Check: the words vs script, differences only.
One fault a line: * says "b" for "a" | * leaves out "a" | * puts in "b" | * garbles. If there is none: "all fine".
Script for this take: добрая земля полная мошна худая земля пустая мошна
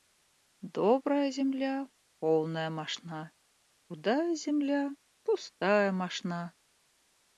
all fine